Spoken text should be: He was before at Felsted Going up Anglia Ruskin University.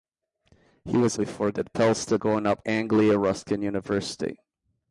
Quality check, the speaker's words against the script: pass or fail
pass